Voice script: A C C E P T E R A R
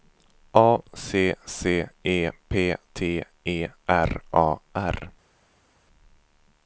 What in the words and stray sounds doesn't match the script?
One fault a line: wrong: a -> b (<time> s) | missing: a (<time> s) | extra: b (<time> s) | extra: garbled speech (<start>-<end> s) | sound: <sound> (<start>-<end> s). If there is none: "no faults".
no faults